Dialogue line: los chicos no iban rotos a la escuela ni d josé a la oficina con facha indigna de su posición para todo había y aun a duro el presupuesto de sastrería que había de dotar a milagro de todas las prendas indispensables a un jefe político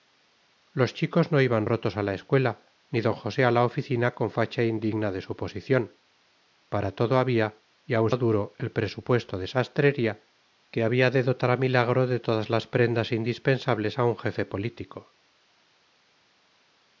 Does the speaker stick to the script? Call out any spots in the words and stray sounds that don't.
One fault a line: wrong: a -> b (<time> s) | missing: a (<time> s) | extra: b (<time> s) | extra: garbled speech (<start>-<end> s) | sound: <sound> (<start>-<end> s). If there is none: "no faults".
no faults